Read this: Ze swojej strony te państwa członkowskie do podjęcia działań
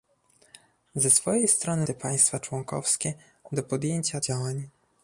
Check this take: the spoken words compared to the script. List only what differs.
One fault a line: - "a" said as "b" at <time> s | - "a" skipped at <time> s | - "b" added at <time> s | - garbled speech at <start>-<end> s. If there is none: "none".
none